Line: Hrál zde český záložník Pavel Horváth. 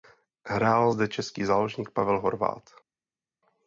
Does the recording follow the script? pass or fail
pass